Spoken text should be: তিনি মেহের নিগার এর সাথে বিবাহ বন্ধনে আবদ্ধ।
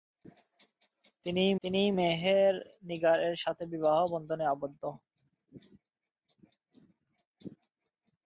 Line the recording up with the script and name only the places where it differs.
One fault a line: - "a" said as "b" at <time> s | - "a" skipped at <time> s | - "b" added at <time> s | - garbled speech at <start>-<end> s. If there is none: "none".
- "তিনি" added at 1.6 s